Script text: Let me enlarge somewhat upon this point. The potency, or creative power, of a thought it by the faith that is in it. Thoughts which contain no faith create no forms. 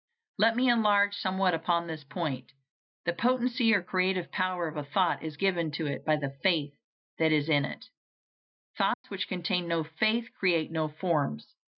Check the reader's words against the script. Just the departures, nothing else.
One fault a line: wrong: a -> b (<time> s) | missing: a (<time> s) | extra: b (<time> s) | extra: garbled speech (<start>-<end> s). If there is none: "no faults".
extra: is given to (5.2 s)